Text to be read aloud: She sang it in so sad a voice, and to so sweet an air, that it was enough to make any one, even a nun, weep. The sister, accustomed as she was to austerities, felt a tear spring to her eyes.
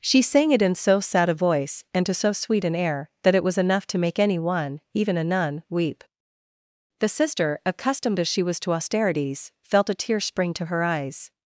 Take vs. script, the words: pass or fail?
pass